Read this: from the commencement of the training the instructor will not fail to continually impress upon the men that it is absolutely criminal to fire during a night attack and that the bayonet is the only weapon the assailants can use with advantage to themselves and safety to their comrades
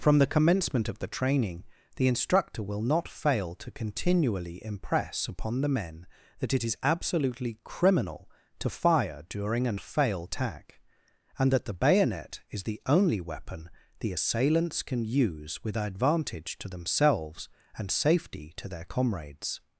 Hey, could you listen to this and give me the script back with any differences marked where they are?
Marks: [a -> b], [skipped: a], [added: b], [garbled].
from the commencement of the training the instructor will not fail to continually impress upon the men that it is absolutely criminal to fire during a [night -> fail] attack and that the bayonet is the only weapon the assailants can use with advantage to themselves and safety to their comrades